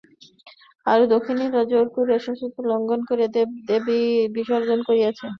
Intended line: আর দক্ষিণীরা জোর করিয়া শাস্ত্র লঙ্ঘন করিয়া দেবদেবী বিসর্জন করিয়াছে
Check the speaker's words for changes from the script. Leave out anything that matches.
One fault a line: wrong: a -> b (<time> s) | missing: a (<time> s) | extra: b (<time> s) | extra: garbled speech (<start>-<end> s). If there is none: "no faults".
no faults